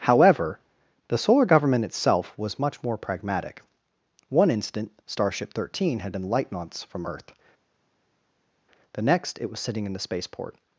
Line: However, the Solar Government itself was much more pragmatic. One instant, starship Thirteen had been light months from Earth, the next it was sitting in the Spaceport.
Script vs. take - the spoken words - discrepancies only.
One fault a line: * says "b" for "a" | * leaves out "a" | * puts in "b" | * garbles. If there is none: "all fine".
all fine